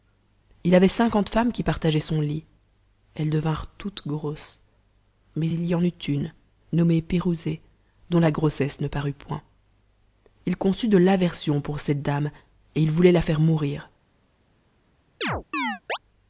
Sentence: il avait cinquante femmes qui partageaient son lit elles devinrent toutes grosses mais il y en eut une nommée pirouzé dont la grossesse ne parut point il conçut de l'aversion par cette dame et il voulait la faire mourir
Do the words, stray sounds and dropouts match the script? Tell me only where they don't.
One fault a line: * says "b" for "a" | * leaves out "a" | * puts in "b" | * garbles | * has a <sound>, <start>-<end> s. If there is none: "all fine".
* says "pour" for "par"
* has a chirp, 15.2-16.0 s